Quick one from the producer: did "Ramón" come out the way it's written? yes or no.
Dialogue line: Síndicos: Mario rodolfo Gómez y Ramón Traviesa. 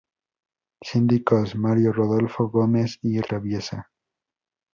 no